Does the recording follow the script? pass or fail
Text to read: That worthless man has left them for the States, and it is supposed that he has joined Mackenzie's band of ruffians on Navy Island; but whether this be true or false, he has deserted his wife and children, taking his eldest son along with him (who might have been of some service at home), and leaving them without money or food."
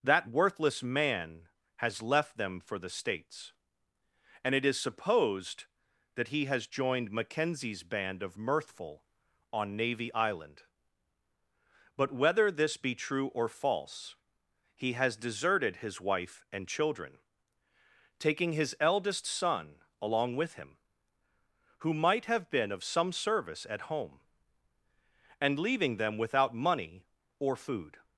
fail